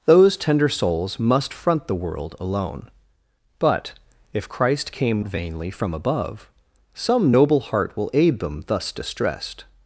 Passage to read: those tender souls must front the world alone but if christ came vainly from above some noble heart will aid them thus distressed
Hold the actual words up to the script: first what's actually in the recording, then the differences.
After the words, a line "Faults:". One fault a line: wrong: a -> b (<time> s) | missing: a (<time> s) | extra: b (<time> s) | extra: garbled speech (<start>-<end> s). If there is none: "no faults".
those tender souls must front the world alone but if christ came vainly from above some noble heart will aid them thus distressed
Faults:
no faults